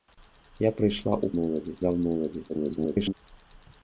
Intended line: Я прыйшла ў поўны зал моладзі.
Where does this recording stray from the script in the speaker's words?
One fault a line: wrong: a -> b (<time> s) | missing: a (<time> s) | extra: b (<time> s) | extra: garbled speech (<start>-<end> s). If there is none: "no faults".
wrong: поўны -> моладзі (1.4 s)
extra: garbled speech (2.5-3.1 s)